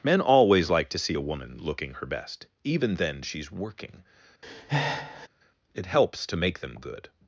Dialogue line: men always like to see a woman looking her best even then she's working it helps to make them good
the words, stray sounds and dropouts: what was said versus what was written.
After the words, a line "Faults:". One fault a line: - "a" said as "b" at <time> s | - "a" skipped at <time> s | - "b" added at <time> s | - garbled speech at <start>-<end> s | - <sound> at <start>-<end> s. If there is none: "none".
men always like to see a woman looking her best even then she's working it helps to make them good
Faults:
- breath at 4.4-5.3 s